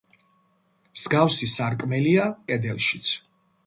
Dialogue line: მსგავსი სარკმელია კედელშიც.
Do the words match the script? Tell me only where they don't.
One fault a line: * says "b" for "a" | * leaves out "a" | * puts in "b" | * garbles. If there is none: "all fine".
all fine